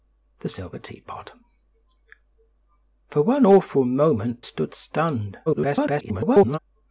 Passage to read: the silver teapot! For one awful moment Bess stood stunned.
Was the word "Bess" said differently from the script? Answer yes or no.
yes